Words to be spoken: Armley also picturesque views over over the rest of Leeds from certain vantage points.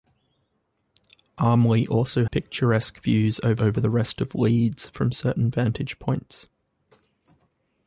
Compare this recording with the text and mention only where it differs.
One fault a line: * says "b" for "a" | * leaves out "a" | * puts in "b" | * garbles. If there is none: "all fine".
all fine